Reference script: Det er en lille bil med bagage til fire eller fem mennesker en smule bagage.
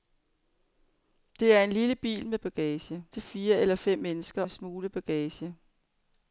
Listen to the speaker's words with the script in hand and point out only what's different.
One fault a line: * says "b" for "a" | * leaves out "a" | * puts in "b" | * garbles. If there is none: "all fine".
all fine